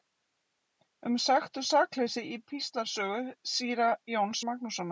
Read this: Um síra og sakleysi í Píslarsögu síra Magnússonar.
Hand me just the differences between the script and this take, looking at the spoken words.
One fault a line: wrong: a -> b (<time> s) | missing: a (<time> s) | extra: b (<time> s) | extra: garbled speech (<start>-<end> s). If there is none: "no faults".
wrong: síra -> sekt (1.2 s)
extra: Jóns (4.1 s)